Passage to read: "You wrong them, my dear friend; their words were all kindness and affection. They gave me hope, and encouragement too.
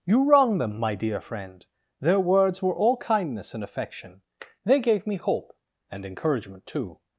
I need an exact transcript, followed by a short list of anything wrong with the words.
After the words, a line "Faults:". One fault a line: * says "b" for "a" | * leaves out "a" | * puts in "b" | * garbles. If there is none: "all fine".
"You wrong them, my dear friend; their words were all kindness and affection. They gave me hope, and encouragement too.
Faults:
all fine